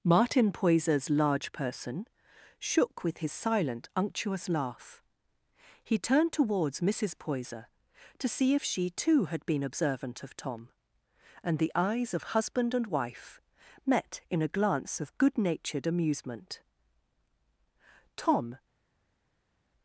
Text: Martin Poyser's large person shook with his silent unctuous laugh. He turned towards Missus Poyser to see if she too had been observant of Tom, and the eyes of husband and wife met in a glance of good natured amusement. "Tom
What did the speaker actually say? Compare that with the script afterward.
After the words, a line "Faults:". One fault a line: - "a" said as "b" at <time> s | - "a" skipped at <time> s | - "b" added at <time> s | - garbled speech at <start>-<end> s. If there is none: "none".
Martin Poyser's large person shook with his silent unctuous laugh. He turned towards Missus Poyser to see if she too had been observant of Tom, and the eyes of husband and wife met in a glance of good natured amusement. "Tom
Faults:
none